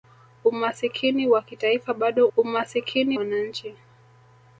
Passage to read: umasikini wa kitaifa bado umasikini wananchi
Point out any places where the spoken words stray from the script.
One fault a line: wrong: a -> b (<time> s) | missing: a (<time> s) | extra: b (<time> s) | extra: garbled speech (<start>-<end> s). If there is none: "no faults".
no faults